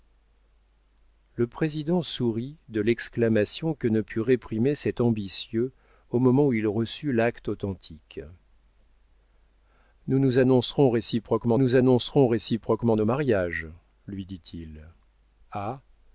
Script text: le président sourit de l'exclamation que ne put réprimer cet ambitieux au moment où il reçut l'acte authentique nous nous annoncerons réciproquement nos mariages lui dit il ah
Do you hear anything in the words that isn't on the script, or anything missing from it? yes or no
yes